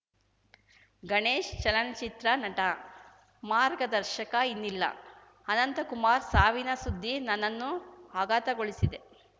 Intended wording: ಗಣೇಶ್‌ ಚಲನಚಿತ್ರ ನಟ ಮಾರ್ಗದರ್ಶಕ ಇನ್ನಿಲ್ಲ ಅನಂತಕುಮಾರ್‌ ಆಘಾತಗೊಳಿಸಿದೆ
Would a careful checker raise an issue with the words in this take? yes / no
yes